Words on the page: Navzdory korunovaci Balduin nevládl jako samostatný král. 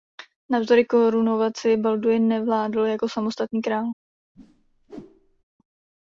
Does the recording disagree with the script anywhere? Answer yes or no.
no